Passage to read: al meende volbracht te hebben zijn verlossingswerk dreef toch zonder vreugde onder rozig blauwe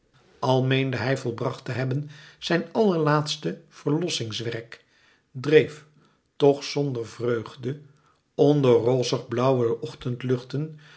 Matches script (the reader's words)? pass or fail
fail